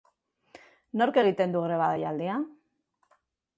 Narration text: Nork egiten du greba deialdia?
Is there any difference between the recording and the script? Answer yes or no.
no